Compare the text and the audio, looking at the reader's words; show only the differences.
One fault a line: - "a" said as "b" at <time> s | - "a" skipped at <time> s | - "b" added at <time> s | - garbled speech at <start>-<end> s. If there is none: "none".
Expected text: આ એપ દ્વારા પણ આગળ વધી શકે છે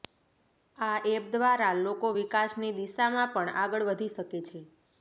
- "લોકો વિકાસની દિશામાં" added at 1.8 s